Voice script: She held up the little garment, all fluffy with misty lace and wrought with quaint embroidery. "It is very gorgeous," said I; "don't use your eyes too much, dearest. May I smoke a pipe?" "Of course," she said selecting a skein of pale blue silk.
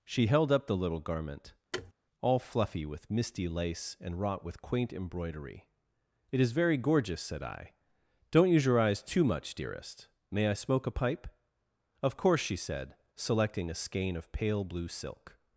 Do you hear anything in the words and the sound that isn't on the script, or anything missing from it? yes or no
yes